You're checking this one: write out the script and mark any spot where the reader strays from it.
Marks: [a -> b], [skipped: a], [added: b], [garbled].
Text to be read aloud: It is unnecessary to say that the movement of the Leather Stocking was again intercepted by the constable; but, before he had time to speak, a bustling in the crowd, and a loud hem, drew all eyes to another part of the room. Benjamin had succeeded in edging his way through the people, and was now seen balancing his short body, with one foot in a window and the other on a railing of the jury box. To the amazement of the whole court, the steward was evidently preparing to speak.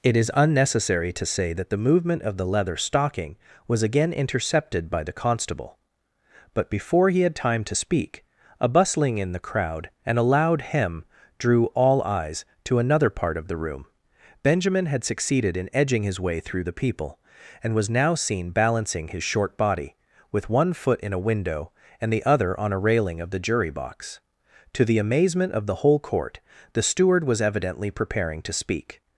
It is unnecessary to say that the movement of the Leather Stocking was again intercepted by the constable; but, before he had time to speak, a bustling in the crowd, and a loud hem, drew all eyes to another part of the room. Benjamin had succeeded in edging his way through the people, and was now seen balancing his short body, with one foot in a window and the other on a railing of the jury box. To the amazement of the whole court, the steward was evidently preparing to speak.